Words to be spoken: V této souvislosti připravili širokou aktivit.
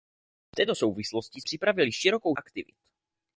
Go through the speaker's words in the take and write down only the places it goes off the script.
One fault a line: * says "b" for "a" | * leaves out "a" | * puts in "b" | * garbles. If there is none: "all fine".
all fine